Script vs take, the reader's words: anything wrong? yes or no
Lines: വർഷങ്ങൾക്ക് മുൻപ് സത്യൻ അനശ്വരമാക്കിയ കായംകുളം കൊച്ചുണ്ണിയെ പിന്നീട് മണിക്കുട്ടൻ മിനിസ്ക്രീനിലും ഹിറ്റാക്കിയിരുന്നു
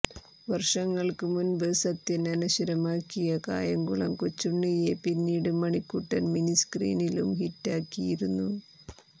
no